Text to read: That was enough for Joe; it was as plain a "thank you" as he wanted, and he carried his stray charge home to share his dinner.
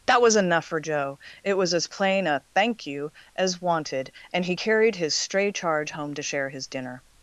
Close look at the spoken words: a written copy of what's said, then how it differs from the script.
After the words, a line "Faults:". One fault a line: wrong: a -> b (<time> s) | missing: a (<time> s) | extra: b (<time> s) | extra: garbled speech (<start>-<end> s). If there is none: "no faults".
That was enough for Joe; it was as plain a "thank you" as wanted, and he carried his stray charge home to share his dinner.
Faults:
missing: he (3.6 s)